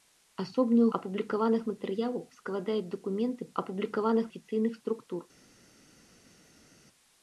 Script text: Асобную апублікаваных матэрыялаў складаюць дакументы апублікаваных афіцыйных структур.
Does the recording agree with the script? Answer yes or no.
yes